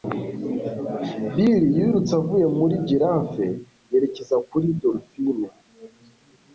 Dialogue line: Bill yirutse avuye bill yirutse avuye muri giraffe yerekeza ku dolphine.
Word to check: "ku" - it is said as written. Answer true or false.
false